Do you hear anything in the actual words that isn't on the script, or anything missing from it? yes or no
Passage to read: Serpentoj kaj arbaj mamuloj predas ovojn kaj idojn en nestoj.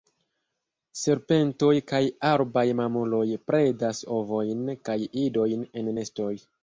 no